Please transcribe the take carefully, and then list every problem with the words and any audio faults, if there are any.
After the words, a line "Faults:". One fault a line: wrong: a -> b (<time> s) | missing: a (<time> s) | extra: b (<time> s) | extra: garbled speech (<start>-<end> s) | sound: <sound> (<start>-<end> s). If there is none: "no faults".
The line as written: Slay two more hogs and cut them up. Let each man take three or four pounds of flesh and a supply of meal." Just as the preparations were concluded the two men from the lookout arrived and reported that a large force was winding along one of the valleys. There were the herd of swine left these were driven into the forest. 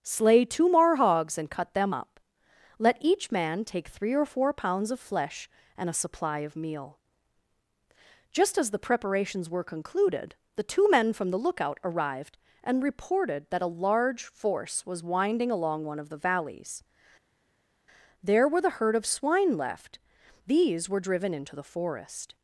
Slay two more hogs and cut them up. Let each man take three or four pounds of flesh and a supply of meal." Just as the preparations were concluded the two men from the lookout arrived and reported that a large force was winding along one of the valleys. There were the herd of swine left these were driven into the forest.
Faults:
no faults